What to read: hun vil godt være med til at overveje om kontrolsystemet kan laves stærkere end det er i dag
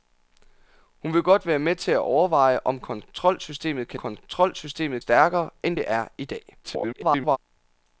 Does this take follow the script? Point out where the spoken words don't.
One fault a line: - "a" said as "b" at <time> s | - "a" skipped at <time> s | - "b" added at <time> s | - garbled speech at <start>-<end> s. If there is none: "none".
- "laves" said as "kontrolsystemet" at 3.9 s
- garbled speech at 6.6-7.4 s